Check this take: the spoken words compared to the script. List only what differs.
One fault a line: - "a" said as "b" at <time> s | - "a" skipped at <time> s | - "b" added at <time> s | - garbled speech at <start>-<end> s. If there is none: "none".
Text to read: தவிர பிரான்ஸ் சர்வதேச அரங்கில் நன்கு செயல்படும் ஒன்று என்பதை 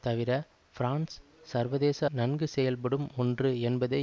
- "அரங்கில்" skipped at 2.0 s